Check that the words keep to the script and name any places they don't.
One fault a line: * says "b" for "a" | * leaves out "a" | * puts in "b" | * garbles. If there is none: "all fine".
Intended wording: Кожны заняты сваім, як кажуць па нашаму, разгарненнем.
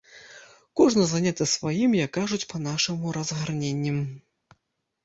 all fine